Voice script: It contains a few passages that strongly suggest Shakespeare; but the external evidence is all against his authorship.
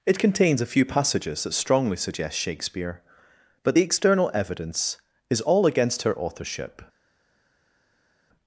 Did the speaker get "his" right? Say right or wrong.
wrong